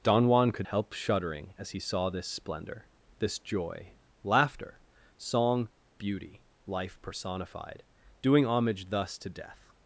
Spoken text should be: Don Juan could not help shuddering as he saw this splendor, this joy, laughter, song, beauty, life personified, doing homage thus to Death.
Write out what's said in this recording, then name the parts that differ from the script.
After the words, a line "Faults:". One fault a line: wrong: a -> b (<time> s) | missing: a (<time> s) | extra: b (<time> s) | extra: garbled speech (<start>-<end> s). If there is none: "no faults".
Don Juan could help shuddering as he saw this splendor, this joy, laughter, song, beauty, life personified, doing homage thus to Death.
Faults:
missing: not (0.7 s)